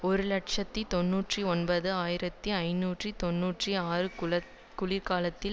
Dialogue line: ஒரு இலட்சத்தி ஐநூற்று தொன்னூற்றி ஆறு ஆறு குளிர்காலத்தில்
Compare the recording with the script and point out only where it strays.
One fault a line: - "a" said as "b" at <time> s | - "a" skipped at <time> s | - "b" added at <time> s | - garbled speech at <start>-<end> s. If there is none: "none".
- "தொன்னூற்றி ஒன்பது ஆயிரத்தி" added at 0.9 s
- "ஆறு" skipped at 4.1 s